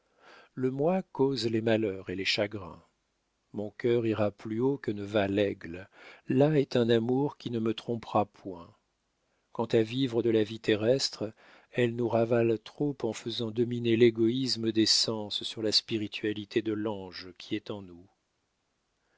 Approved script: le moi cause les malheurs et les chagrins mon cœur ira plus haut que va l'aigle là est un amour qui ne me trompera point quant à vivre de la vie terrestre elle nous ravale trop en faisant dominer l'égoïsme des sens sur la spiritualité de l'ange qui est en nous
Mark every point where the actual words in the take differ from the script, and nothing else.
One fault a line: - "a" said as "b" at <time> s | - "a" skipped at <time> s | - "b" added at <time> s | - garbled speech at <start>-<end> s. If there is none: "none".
- "ne" added at 4.9 s